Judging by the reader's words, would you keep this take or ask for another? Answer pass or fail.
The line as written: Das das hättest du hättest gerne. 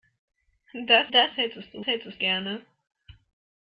pass